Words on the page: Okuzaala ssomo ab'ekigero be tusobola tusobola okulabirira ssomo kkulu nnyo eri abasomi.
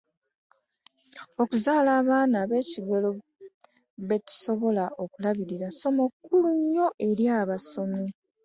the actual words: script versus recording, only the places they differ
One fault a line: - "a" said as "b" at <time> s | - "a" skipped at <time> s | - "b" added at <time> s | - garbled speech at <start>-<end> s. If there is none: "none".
- "ssomo" said as "abaana" at 2.0 s
- "tusobola" skipped at 4.8 s